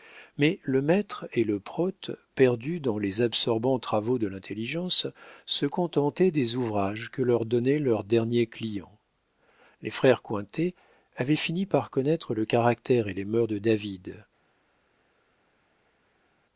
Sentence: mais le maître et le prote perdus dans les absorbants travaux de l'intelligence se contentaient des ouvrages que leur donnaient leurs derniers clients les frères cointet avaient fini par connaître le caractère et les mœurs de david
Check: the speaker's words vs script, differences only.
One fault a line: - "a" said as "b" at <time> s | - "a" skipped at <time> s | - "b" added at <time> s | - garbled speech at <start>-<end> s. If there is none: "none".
none